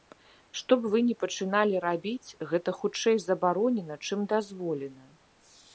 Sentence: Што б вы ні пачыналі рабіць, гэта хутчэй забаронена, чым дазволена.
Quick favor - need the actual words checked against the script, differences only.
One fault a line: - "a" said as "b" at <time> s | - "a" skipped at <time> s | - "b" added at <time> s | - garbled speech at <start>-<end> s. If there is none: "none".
none